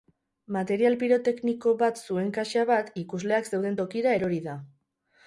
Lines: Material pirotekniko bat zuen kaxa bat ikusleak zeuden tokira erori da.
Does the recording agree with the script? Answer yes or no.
yes